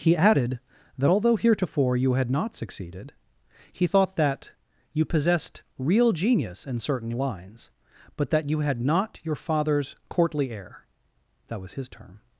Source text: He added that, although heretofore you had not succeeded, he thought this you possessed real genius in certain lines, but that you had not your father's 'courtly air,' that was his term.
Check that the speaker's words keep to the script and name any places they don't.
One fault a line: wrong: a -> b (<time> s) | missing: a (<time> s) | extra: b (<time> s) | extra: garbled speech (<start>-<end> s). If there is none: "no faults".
wrong: this -> that (4.2 s)